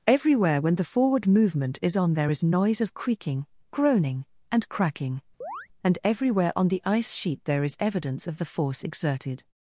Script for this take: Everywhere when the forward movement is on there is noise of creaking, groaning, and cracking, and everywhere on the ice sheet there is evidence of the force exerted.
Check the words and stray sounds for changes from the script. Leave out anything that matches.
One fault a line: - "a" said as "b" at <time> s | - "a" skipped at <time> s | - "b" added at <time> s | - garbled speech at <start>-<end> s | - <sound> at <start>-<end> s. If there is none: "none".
- chirp at 5.4-5.7 s